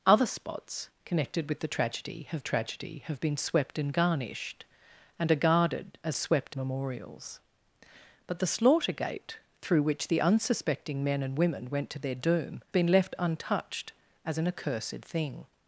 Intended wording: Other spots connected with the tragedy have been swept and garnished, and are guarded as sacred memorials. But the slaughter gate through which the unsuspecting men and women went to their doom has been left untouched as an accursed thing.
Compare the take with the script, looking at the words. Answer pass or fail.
fail